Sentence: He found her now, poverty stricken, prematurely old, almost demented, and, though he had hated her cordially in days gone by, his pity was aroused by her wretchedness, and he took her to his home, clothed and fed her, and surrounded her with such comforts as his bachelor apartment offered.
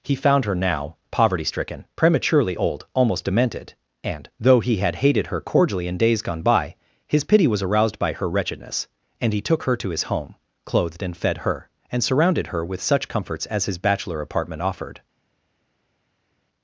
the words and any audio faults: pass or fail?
pass